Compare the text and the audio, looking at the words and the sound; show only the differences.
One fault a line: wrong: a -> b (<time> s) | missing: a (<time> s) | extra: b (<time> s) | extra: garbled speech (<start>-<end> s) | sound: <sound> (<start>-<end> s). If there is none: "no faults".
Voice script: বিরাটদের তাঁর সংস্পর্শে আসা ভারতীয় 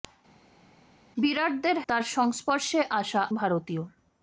no faults